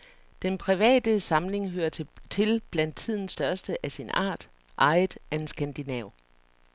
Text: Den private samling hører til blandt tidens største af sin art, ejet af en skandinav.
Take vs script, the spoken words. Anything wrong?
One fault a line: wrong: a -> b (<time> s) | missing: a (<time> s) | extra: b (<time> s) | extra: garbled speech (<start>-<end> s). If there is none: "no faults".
no faults